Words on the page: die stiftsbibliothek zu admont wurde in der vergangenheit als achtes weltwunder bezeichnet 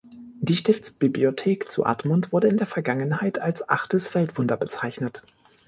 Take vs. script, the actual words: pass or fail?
pass